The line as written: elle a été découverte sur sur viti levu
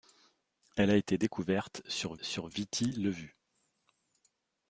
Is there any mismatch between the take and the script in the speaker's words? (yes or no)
no